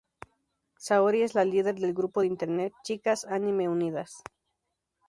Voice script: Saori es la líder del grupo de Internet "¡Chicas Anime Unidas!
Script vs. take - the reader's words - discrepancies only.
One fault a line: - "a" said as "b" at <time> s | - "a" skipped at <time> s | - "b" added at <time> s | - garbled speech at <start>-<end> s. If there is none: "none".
none